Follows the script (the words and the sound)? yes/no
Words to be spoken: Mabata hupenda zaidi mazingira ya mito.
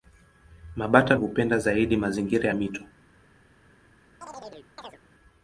no